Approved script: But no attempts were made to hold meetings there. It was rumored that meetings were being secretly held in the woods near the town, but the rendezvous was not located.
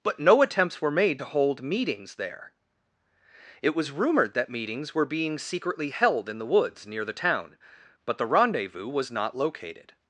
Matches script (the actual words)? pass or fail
pass